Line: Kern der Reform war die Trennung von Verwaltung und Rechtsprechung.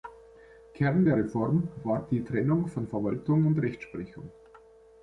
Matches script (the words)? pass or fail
pass